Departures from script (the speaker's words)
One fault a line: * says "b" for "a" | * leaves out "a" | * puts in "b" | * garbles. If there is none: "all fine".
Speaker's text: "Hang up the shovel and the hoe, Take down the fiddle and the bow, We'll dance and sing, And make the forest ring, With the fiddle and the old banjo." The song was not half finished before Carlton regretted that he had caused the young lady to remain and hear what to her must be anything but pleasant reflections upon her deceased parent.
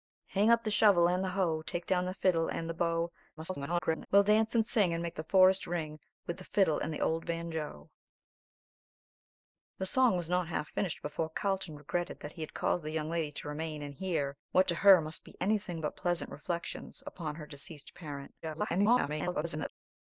* garbles
* garbles